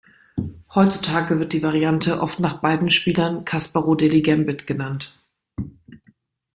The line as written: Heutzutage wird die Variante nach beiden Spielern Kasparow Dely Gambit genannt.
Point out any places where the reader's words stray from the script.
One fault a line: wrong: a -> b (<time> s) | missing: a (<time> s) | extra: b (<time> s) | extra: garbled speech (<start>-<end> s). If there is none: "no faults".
extra: oft (2.2 s)